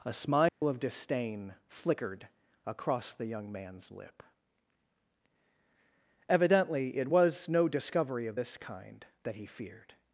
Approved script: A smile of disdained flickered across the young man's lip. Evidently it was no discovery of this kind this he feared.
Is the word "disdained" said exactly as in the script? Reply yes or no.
no